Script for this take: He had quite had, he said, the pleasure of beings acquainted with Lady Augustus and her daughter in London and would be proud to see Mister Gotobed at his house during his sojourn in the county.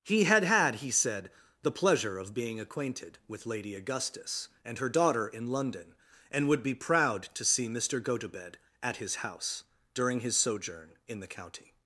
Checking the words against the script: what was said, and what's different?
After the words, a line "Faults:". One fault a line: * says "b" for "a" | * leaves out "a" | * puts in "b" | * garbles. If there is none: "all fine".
He had had, he said, the pleasure of being acquainted with Lady Augustus and her daughter in London and would be proud to see Mister Gotobed at his house during his sojourn in the county.
Faults:
* leaves out "quite"
* says "being" for "beings"